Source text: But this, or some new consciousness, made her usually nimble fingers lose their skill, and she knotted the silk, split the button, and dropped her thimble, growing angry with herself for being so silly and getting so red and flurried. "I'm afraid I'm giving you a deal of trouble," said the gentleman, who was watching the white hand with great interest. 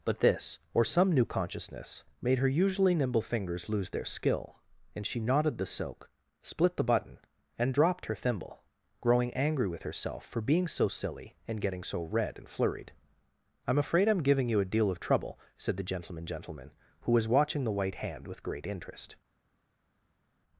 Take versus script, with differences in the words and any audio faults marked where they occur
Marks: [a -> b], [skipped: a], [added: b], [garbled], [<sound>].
But this, or some new consciousness, made her usually nimble fingers lose their skill, and she knotted the silk, split the button, and dropped her thimble, growing angry with herself for being so silly and getting so red and flurried. "I'm afraid I'm giving you a deal of trouble," said the gentleman, [added: gentleman] who was watching the white hand with great interest.